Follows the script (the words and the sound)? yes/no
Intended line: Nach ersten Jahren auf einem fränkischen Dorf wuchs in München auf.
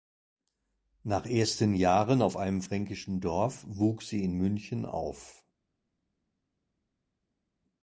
no